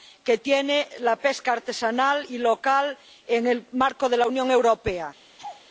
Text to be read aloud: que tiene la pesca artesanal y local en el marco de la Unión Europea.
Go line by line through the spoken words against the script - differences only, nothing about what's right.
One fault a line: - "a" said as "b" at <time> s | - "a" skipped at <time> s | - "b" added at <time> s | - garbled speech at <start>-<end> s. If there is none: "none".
none